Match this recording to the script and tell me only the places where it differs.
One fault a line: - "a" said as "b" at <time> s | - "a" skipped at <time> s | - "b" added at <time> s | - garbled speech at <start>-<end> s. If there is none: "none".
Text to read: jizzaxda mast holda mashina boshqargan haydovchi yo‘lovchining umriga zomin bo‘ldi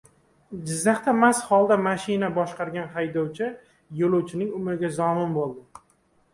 none